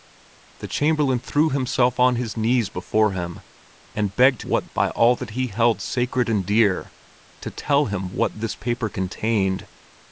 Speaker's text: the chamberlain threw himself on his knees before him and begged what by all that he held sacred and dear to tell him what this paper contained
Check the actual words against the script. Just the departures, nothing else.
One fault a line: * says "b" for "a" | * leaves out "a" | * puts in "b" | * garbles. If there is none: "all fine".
all fine